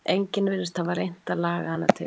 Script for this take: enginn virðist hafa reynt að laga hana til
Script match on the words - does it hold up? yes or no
yes